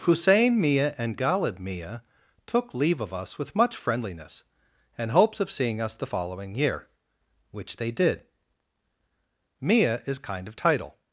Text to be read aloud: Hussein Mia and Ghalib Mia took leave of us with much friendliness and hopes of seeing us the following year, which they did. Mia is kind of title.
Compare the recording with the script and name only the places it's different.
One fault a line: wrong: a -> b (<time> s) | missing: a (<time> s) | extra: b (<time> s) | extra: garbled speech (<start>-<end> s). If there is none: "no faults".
no faults